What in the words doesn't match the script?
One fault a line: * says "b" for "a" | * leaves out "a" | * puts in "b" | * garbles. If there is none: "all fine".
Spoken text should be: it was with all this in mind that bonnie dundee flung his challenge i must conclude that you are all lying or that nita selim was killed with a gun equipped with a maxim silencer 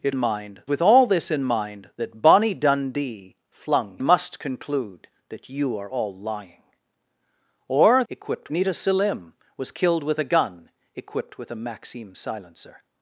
* says "mind" for "was"
* leaves out "his challenge i"
* says "equipped" for "that"